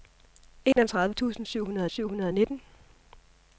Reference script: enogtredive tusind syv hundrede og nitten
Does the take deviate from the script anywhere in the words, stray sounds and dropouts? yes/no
yes